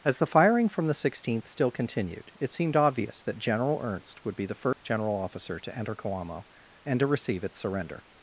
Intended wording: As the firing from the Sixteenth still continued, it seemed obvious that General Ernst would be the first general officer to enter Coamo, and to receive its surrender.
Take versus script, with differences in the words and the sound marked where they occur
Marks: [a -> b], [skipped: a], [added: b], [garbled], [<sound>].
As the firing from the Sixteenth still continued, it seemed obvious that General Ernst would be the first [dropout] general officer to enter Coamo, and to receive its surrender.